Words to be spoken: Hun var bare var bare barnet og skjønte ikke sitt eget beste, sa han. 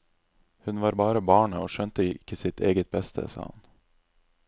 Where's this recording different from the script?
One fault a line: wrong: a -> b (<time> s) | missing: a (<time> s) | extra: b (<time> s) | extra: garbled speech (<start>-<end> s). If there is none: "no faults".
missing: var bare (1.2 s)